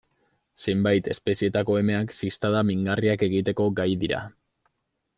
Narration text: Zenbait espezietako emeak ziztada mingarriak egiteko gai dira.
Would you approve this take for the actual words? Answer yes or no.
yes